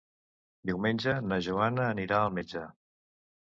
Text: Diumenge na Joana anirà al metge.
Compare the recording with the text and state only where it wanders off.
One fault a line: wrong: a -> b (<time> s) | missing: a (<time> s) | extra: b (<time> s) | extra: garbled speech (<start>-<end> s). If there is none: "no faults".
no faults